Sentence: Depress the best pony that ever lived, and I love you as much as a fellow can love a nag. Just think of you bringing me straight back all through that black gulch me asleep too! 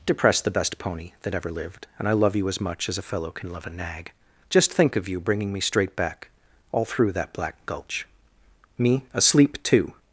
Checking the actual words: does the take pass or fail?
pass